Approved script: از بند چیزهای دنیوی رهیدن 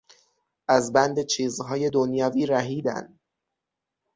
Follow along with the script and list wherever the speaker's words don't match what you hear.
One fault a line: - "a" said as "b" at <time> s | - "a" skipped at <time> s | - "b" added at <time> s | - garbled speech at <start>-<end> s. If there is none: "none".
none